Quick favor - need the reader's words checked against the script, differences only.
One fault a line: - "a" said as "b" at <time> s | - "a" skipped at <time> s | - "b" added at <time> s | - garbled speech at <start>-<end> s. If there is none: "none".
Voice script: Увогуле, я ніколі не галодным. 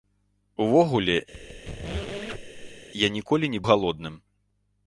none